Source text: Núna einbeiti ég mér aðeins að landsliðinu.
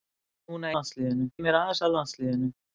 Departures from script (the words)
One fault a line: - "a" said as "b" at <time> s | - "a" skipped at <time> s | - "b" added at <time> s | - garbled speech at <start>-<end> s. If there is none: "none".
- "einbeiti" said as "landsliðinu" at 0.8 s